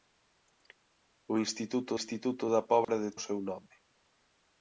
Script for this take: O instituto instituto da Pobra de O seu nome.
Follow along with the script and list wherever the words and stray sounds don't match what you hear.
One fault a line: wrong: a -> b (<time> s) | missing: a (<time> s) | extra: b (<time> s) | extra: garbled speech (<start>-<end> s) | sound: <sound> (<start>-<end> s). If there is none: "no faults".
sound: dropout (2.8-2.9 s)